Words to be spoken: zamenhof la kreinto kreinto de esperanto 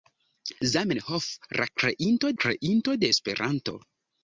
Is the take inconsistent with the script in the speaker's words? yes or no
no